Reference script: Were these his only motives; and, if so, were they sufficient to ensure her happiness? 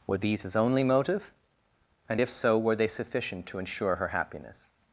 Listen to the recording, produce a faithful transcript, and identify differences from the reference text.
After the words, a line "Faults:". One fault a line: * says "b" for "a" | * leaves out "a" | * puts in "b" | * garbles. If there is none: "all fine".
Were these his only motive; and, if so, were they sufficient to ensure her happiness?
Faults:
* says "motive" for "motives"